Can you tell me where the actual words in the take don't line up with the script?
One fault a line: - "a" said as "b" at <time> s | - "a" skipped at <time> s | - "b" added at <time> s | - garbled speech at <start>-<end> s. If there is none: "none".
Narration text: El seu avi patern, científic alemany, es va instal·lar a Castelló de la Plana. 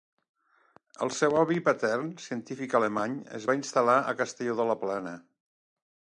none